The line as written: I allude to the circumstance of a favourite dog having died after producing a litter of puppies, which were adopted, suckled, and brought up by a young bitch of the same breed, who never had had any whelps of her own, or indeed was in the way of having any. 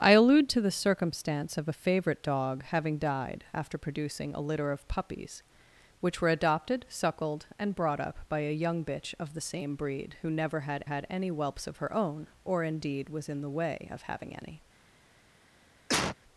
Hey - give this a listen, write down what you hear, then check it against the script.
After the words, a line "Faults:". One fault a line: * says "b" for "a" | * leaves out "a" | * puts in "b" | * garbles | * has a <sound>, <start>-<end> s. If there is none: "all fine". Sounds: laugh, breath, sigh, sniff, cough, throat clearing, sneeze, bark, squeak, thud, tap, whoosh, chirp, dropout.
I allude to the circumstance of a favourite dog having died after producing a litter of puppies, which were adopted, suckled, and brought up by a young bitch of the same breed, who never had had any whelps of her own, or indeed was in the way of having any.
Faults:
* has a cough, 15.9-16.2 s